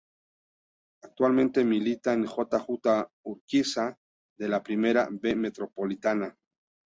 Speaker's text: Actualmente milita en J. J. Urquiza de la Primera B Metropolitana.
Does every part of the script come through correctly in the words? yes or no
yes